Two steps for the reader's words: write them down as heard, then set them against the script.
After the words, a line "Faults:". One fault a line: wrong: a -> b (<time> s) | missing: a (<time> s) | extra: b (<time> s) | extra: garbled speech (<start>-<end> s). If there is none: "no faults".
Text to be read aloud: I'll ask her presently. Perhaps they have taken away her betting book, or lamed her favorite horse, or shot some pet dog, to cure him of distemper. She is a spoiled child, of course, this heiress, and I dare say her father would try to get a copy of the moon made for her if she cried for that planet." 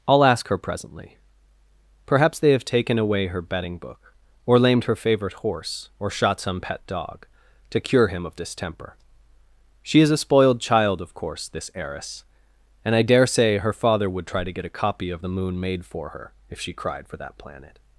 I'll ask her presently. Perhaps they have taken away her betting book, or lamed her favorite horse, or shot some pet dog, to cure him of distemper. She is a spoiled child, of course, this heiress, and I dare say her father would try to get a copy of the moon made for her if she cried for that planet."
Faults:
no faults